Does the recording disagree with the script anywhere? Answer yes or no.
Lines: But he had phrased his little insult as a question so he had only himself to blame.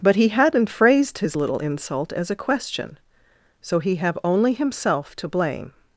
yes